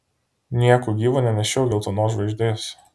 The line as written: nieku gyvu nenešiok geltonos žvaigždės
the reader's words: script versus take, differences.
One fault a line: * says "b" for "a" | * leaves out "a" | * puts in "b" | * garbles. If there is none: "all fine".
all fine